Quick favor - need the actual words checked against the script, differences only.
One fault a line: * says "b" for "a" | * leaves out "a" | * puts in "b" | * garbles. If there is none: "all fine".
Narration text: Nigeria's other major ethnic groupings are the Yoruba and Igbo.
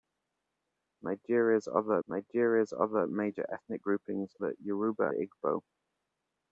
* puts in "nigeria's other"
* leaves out "are"
* leaves out "and"